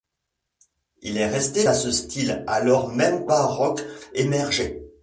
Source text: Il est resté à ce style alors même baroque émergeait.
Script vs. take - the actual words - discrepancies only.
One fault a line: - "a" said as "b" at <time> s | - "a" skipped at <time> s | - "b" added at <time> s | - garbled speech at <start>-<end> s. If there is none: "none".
none